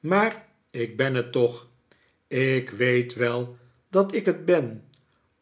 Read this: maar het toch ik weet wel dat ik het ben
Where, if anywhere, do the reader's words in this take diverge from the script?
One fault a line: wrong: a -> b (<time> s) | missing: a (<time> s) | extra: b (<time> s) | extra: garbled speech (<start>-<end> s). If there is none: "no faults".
extra: ik ben (0.7 s)